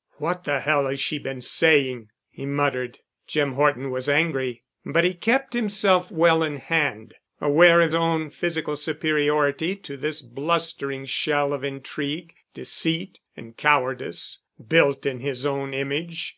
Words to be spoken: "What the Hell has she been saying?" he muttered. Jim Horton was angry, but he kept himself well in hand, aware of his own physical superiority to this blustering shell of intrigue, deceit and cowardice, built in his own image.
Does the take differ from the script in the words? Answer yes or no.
yes